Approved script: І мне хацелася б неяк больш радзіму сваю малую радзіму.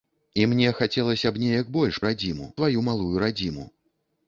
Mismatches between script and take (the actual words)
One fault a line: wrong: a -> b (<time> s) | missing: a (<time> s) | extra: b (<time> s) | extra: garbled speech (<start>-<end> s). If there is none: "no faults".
no faults